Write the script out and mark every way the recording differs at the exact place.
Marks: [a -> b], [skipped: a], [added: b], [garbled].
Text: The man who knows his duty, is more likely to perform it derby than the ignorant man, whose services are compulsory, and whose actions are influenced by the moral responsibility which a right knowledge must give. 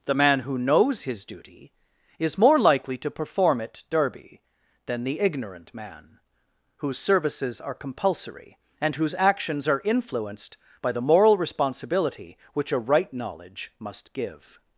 The man who knows his duty, is more likely to perform it derby than the ignorant man, whose services are compulsory, and whose actions are influenced by the moral responsibility which a right knowledge must give.